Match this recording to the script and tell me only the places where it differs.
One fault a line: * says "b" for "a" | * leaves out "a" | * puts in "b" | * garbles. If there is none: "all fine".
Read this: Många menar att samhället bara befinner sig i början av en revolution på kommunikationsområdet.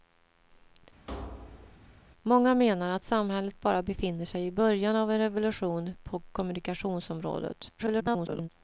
* garbles